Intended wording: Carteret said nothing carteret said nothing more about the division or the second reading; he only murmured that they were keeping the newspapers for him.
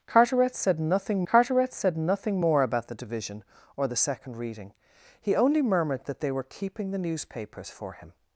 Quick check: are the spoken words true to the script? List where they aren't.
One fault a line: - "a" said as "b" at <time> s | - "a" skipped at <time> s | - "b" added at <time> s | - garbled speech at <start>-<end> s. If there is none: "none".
none